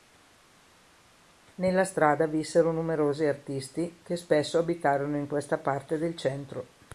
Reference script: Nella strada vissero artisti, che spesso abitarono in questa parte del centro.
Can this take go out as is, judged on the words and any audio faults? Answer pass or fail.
fail